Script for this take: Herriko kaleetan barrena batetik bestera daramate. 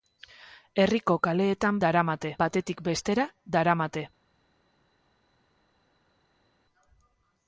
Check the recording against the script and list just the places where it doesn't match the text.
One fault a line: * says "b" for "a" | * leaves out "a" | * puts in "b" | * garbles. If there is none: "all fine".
* says "daramate" for "barrena"